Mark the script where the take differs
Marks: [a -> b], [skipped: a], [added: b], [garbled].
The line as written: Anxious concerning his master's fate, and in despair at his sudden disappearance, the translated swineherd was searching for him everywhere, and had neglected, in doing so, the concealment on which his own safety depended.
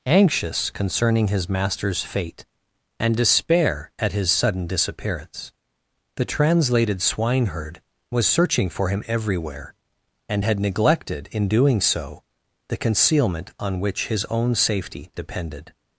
Anxious concerning his master's fate, and [skipped: in] despair at his sudden disappearance, the translated swineherd was searching for him everywhere, and had neglected, in doing so, the concealment on which his own safety depended.